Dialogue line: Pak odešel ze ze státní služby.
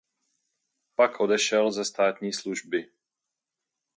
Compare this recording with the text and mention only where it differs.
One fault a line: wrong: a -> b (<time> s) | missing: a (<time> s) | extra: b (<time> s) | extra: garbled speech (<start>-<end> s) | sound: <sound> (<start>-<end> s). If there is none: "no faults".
missing: ze (1.8 s)